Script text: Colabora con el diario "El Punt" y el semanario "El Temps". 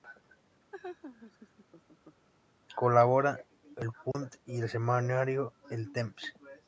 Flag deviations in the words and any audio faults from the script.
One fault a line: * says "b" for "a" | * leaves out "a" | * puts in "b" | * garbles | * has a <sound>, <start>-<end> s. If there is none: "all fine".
* has a laugh, 0.7-2.3 s
* leaves out "con el diario"
* has a dropout, 4.1-4.1 s